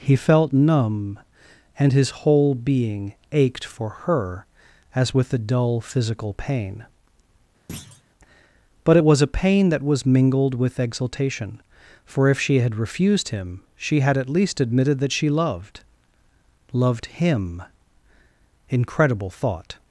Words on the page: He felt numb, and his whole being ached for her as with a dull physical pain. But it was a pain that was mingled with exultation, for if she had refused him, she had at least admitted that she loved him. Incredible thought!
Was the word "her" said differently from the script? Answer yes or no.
no